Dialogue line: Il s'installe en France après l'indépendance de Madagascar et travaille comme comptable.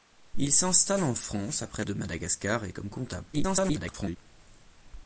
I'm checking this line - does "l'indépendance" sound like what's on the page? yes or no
no